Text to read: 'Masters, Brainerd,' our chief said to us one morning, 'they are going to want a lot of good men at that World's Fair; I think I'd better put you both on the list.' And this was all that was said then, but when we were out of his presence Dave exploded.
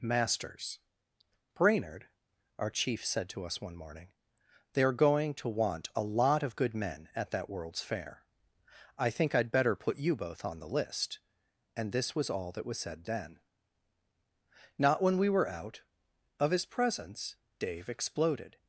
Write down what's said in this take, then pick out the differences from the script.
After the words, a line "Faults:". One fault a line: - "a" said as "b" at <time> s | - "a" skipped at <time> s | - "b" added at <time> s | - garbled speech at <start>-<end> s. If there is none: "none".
'Masters, Brainerd,' our chief said to us one morning, 'they are going to want a lot of good men at that World's Fair; I think I'd better put you both on the list.' And this was all that was said then, not when we were out of his presence Dave exploded.
Faults:
- "but" said as "not" at 14.8 s